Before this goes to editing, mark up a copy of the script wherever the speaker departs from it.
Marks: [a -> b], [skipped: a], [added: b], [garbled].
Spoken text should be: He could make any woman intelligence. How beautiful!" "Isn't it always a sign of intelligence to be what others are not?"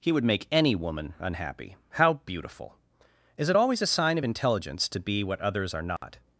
He [could -> would] make any woman [intelligence. -> unhappy] How beautiful!" ["Isn't -> Is] it always a sign of intelligence to be what others are not?"